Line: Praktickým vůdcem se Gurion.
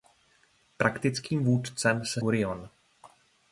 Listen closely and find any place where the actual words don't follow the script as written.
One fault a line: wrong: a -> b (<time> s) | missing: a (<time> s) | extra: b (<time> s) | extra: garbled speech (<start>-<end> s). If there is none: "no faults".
no faults